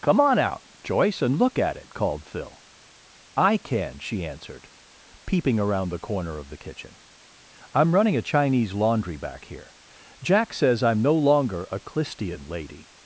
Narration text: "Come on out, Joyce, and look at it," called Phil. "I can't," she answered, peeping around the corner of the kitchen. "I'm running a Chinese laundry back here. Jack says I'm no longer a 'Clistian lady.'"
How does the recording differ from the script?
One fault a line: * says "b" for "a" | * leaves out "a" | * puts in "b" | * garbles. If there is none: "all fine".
* says "can" for "can't"